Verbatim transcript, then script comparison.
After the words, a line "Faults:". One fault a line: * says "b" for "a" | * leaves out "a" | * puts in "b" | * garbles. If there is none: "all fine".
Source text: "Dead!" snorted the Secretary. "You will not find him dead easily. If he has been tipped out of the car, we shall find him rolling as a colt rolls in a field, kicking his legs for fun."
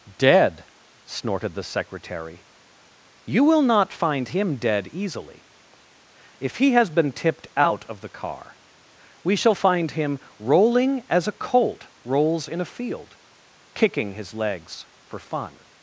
"Dead!" snorted the Secretary. "You will not find him dead easily. If he has been tipped out of the car, we shall find him rolling as a colt rolls in a field, kicking his legs for fun."
Faults:
all fine